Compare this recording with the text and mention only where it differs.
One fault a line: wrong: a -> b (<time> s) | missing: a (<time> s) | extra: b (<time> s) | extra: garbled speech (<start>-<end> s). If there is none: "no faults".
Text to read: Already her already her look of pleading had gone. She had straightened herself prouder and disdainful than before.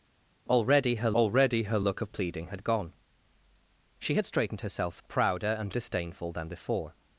no faults